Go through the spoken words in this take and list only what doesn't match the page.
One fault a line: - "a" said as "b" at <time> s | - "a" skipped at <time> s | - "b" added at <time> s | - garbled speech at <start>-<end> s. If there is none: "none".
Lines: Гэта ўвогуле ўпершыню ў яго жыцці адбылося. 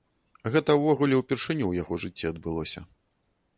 none